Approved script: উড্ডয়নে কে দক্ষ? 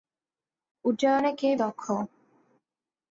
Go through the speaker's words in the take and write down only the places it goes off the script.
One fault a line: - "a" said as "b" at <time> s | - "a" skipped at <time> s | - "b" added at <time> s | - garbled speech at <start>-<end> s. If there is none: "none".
none